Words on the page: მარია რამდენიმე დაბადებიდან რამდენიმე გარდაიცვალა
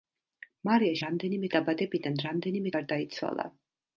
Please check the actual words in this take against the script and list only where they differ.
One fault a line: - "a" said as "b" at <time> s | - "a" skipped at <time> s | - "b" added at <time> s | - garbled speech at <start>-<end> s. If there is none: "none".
none